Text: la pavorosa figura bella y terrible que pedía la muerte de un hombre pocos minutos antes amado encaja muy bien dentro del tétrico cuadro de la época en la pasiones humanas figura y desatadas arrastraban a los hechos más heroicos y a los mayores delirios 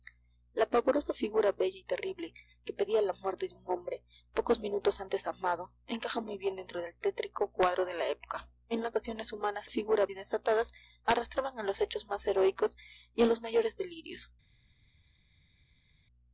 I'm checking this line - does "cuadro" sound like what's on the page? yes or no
yes